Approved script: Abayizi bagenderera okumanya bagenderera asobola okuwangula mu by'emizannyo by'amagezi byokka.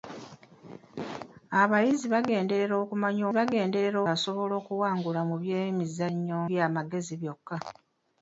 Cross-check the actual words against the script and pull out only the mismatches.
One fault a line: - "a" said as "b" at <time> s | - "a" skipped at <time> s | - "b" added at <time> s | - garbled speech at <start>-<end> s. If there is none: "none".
none